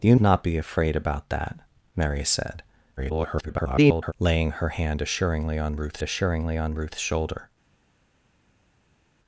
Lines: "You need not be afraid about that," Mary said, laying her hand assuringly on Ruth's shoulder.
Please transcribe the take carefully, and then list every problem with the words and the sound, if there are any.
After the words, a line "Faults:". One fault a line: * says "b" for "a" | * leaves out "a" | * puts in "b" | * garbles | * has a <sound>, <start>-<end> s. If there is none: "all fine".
"You not be afraid about that," Mary said, [garbled] laying her hand assuringly on Ruth's assuringly on Ruth's shoulder.
Faults:
* leaves out "need"
* garbles
* puts in "assuringly on Ruth's"